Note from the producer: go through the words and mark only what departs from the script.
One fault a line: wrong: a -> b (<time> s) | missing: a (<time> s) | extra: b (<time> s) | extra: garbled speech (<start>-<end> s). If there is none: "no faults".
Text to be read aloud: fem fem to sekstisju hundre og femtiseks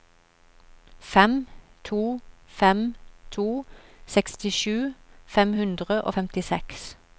extra: to (1.8 s)
extra: fem (5.2 s)